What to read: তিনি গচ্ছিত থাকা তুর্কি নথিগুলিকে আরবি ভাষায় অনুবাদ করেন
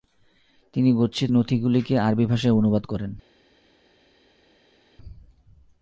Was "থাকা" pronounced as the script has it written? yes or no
no